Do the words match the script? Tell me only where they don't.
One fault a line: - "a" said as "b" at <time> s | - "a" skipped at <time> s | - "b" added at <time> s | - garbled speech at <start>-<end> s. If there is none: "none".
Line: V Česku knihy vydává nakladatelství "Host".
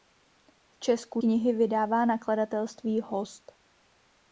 none